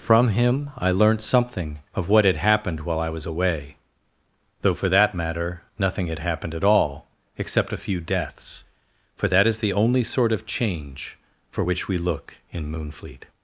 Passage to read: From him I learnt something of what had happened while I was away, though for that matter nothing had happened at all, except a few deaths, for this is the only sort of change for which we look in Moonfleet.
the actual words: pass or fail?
fail